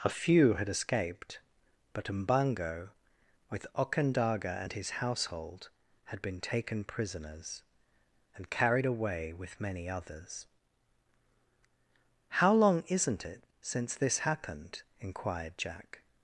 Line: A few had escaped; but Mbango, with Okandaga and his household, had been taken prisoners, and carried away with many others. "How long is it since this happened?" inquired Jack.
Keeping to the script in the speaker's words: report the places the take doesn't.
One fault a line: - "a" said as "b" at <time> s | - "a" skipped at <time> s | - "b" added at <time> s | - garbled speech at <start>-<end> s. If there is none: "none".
- "is" said as "isn't" at 12.9 s